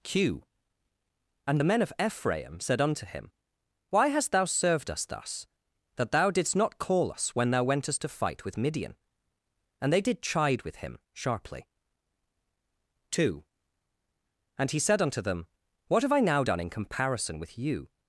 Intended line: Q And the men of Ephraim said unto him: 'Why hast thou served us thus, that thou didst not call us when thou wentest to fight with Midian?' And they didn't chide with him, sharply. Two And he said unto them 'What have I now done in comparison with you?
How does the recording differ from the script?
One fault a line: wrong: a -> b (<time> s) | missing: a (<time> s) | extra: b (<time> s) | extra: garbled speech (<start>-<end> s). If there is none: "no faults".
wrong: didn't -> did (10.0 s)